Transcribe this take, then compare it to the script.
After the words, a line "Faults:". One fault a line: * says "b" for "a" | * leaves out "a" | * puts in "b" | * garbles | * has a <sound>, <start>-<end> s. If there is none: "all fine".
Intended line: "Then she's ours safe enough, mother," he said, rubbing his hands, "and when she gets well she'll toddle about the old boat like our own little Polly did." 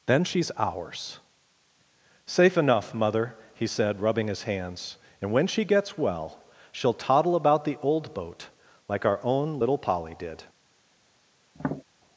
"Then she's ours safe enough, mother," he said, rubbing his hands, "and when she gets well she'll toddle about the old boat like our own little Polly did."
Faults:
* has a tap, 11.5-11.8 s